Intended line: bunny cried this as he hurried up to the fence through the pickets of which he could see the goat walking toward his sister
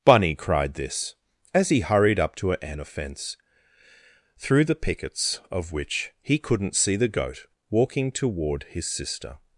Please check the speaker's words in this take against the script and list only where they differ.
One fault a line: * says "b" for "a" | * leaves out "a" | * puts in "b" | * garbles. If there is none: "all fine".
* says "an" for "the"
* says "couldn't" for "could"